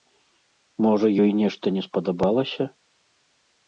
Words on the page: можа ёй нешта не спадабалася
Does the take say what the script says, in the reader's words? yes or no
yes